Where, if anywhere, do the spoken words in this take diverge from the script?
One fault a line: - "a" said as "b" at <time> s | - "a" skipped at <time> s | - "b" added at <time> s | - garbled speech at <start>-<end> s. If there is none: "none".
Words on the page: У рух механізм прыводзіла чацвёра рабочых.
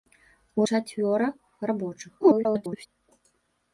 - "рух механізм прыводзіла" skipped at 0.7 s
- garbled speech at 2.2-2.9 s